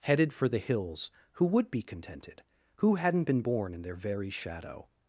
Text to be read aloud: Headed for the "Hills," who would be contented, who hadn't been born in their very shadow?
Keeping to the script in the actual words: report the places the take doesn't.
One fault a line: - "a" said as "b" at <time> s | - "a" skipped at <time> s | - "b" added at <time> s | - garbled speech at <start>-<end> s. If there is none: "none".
none